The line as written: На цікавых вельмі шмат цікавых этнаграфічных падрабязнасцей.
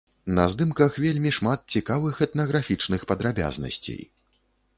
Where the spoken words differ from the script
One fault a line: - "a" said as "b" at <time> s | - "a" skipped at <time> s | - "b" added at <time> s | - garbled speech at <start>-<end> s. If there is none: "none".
- "цікавых" said as "здымках" at 0.5 s